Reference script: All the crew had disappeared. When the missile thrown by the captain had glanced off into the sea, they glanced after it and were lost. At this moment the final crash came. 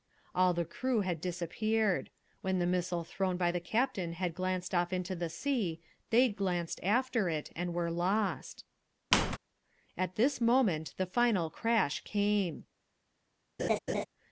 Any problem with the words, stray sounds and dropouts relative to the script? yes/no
yes